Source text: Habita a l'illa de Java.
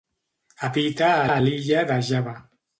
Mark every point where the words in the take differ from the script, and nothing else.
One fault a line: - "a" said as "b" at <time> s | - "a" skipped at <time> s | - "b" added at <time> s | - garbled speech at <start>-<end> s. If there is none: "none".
- "a" added at 1.3 s